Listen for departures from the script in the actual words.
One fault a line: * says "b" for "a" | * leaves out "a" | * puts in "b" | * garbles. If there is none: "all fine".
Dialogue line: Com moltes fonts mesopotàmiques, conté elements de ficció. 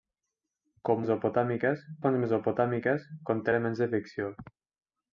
* says "mesopotàmiques" for "moltes"